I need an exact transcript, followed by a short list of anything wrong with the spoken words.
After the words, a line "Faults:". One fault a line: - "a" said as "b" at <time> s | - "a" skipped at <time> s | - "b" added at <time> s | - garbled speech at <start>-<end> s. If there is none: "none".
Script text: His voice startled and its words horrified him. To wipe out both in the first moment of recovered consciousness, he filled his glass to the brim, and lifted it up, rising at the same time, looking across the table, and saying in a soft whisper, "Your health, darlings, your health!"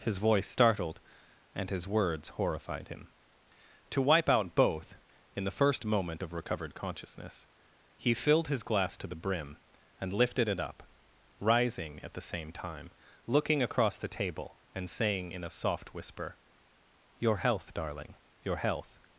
His voice startled and his words horrified him. To wipe out both in the first moment of recovered consciousness, he filled his glass to the brim, and lifted it up, rising at the same time, looking across the table, and saying in a soft whisper, "Your health, darling, your health!"
Faults:
- "its" said as "his" at 1.7 s
- "darlings" said as "darling" at 17.7 s